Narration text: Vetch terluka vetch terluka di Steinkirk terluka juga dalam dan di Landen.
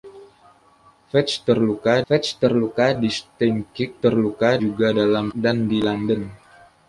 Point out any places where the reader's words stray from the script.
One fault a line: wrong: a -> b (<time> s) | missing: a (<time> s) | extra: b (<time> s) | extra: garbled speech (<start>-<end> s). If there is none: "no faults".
no faults